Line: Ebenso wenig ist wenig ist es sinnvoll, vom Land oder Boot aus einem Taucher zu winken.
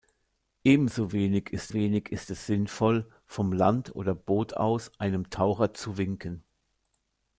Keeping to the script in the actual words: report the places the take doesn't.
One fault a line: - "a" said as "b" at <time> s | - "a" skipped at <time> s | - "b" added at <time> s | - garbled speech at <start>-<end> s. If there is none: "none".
none